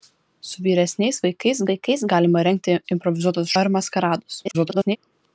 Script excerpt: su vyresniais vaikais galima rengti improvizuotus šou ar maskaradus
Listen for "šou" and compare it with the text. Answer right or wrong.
wrong